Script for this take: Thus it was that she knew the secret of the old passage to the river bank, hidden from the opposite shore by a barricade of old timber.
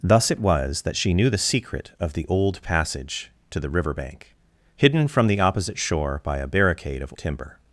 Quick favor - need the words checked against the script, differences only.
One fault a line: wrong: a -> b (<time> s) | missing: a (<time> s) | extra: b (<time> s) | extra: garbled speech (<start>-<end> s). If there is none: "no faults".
missing: old (7.1 s)